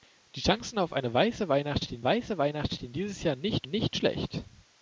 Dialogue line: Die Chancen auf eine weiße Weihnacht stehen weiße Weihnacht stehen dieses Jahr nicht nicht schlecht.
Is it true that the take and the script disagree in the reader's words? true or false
false